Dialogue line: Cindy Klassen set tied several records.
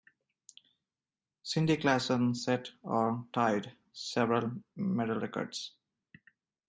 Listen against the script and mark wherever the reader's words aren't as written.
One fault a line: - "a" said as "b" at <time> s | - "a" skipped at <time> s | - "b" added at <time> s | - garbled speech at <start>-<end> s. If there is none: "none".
- "or" added at 2.8 s
- "medal" added at 4.7 s